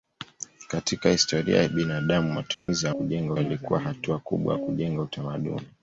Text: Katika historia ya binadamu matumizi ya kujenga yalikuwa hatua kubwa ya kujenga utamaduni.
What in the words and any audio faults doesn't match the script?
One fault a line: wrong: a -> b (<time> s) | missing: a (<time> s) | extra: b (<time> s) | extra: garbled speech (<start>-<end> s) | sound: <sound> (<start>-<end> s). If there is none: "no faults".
sound: dropout (2.5-2.7 s)